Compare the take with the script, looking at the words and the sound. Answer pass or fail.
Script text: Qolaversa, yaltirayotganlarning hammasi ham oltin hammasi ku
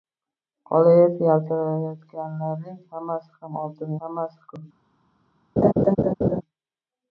fail